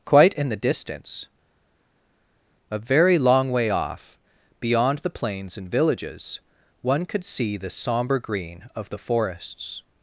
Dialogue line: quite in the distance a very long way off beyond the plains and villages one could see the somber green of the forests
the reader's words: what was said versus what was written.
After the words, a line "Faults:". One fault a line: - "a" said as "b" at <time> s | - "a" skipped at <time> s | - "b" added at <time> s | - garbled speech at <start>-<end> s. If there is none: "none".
quite in the distance a very long way off beyond the plains and villages one could see the somber green of the forests
Faults:
none